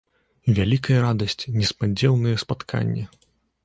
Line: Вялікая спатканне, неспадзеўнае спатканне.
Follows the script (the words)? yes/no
no